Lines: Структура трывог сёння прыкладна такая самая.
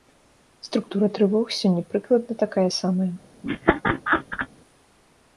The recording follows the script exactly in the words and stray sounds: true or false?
false